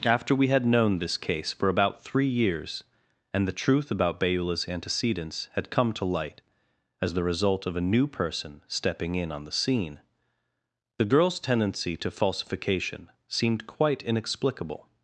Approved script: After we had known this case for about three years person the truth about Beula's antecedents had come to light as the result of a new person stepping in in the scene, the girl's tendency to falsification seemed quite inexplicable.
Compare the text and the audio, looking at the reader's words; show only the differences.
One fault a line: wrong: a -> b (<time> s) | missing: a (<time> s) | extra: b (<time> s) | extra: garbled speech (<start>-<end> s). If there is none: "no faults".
wrong: person -> and (3.3 s)
wrong: in -> on (9.3 s)